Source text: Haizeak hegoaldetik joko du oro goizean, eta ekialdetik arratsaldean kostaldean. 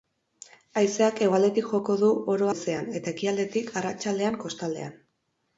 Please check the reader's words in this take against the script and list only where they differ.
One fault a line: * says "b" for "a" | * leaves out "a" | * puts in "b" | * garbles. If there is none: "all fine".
all fine